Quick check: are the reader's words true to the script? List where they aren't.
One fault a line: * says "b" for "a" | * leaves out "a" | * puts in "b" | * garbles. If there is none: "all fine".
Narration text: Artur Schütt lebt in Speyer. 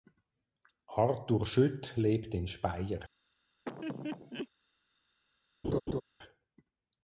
all fine